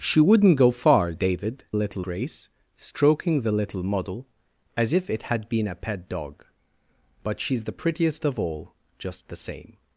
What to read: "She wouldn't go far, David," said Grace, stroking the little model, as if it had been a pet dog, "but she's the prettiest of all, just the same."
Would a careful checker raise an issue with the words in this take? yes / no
yes